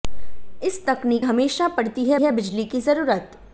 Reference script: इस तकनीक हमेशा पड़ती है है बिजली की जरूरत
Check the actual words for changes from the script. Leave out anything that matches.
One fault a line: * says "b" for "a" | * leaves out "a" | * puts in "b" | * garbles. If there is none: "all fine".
all fine